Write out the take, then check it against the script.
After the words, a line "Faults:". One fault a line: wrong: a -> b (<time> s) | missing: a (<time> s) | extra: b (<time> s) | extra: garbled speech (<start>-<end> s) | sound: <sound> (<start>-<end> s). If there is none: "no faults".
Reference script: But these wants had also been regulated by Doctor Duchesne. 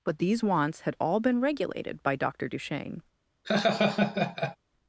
But these wants had all been regulated by Doctor Duchesne.
Faults:
wrong: also -> all (1.0 s)
sound: laugh (3.4-4.6 s)